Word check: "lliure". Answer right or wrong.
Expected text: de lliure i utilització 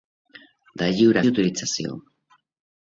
right